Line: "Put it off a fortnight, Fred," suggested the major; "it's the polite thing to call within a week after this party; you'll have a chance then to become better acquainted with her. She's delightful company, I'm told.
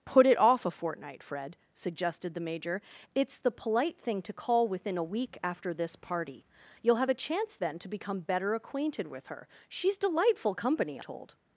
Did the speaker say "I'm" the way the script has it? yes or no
no